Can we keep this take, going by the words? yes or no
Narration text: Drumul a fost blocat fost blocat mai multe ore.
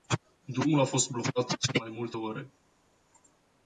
no